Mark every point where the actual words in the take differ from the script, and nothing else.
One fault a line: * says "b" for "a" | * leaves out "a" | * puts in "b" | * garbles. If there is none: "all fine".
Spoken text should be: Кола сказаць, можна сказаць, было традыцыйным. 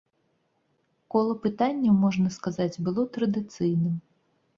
* says "пытанняў" for "сказаць"